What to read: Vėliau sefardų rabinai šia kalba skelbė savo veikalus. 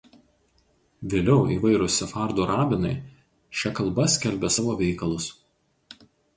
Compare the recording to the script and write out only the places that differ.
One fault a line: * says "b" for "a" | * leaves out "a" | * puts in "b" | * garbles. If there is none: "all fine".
* puts in "įvairūs"